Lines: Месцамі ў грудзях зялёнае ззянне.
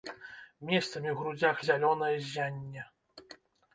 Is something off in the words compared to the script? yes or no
no